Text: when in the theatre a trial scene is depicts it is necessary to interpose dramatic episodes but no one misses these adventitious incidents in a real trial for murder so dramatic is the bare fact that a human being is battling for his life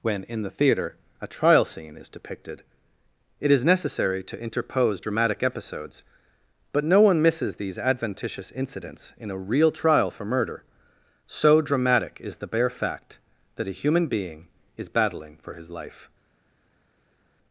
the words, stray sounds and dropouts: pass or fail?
fail